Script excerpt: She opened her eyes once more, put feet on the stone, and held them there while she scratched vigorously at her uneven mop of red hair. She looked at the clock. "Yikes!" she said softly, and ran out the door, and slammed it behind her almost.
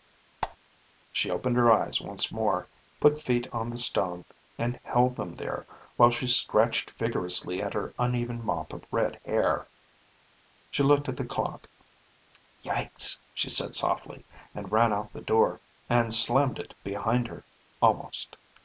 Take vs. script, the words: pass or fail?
pass